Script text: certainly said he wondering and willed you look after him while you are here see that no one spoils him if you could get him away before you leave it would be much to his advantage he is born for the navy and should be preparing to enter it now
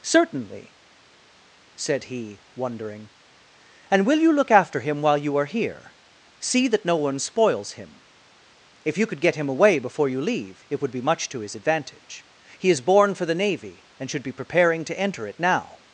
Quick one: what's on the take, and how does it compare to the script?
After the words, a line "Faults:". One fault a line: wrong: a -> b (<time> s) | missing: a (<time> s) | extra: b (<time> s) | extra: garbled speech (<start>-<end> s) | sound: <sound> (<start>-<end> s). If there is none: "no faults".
certainly said he wondering and will you look after him while you are here see that no one spoils him if you could get him away before you leave it would be much to his advantage he is born for the navy and should be preparing to enter it now
Faults:
wrong: willed -> will (4.0 s)